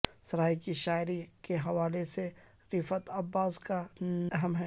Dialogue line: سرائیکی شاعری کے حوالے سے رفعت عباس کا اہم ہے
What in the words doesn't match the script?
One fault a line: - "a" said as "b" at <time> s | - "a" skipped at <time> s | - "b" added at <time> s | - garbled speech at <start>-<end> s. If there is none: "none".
none